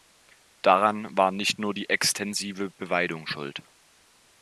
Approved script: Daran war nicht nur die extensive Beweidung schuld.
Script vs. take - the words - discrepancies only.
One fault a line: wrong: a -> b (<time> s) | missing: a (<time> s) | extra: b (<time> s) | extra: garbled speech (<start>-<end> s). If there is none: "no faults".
no faults